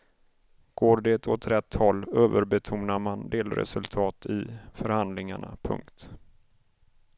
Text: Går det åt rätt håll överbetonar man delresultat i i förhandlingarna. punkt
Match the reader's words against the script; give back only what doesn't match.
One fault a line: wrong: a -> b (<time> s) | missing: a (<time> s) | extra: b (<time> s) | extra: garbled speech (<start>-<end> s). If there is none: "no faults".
missing: i (4.5 s)